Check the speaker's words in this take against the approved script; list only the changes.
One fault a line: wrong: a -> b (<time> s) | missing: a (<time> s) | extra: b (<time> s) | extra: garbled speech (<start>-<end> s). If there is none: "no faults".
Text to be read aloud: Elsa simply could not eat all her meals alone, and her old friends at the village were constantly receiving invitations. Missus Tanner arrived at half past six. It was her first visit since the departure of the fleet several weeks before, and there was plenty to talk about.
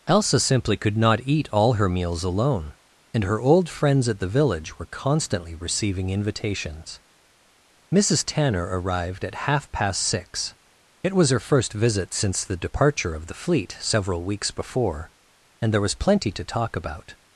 no faults